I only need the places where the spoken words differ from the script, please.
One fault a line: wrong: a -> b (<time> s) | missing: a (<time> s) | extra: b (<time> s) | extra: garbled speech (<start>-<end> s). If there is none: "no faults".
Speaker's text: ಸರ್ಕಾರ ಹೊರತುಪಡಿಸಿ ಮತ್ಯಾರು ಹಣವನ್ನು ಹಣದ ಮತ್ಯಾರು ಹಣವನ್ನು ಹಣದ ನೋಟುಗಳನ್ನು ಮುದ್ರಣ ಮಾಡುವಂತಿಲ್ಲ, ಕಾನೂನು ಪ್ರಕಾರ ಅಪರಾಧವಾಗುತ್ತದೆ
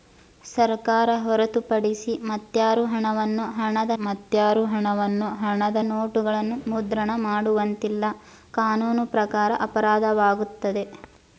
no faults